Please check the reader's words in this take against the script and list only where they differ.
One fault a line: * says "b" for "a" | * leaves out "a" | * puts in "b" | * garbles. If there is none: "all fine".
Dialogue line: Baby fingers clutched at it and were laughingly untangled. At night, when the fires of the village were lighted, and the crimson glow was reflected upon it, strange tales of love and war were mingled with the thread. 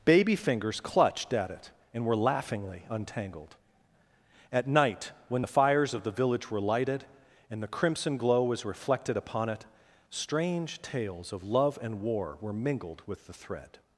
all fine